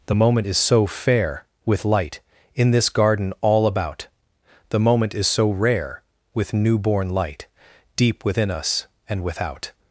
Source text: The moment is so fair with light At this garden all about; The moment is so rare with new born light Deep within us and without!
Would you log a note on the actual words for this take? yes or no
yes